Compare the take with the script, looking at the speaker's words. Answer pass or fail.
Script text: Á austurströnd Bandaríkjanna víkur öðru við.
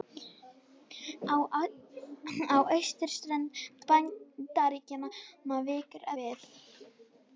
fail